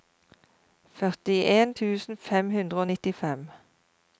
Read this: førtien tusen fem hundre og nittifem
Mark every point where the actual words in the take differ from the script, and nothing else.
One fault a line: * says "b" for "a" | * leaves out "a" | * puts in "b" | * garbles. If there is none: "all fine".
all fine